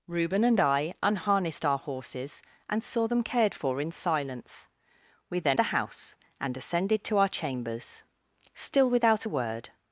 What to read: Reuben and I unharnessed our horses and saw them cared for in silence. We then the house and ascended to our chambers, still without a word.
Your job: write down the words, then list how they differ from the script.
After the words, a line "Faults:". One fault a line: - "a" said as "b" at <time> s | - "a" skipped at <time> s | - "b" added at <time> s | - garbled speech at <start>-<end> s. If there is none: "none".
Reuben and I unharnessed our horses and saw them cared for in silence. We then the house and ascended to our chambers, still without a word.
Faults:
none